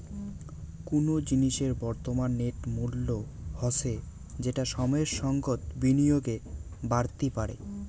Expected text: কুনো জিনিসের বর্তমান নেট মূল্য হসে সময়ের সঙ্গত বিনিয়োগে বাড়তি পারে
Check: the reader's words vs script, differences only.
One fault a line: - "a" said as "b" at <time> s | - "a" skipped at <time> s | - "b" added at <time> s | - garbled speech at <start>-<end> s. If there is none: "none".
- "যেটা" added at 4.4 s